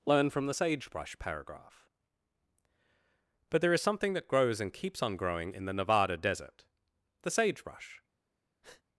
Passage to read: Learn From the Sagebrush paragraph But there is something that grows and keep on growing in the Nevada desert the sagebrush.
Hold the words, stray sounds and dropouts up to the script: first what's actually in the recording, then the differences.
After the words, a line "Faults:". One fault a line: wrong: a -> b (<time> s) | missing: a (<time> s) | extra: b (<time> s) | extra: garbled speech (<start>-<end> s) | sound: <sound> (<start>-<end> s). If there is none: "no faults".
Learn From the Sagebrush paragraph But there is something that grows and keeps on growing in the Nevada desert the sagebrush.
Faults:
wrong: keep -> keeps (4.7 s)
sound: breath (8.6-8.8 s)